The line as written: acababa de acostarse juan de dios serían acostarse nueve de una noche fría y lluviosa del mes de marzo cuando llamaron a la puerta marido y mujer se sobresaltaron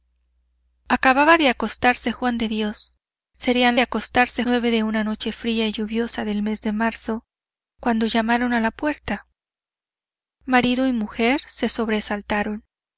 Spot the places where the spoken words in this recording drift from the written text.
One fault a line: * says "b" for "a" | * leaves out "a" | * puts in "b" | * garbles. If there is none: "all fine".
all fine